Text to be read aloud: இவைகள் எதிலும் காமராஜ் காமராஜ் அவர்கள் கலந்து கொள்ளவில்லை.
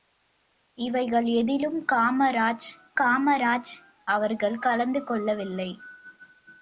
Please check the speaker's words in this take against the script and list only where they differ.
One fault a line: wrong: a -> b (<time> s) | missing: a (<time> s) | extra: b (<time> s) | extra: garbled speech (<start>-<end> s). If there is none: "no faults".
no faults